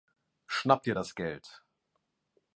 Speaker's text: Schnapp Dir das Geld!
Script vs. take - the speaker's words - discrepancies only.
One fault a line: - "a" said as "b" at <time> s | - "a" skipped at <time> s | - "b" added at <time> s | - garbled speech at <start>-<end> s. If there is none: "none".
none